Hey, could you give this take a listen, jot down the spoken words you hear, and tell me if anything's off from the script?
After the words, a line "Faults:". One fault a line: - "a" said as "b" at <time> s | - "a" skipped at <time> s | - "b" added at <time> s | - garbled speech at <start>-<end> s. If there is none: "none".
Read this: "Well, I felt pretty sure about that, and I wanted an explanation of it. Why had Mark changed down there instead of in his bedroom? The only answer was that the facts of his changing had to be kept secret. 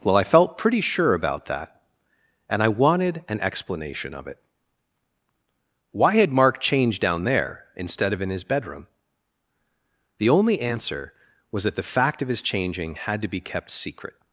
"Well, I felt pretty sure about that, and I wanted an explanation of it. Why had Mark changed down there instead of in his bedroom? The only answer was that the fact of his changing had to be kept secret.
Faults:
- "facts" said as "fact" at 11.8 s